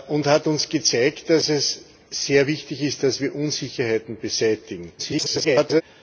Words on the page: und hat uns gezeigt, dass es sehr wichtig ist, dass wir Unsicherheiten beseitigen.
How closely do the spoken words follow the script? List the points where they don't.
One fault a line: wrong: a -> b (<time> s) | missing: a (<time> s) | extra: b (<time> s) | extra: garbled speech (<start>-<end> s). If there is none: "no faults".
extra: garbled speech (5.0-5.8 s)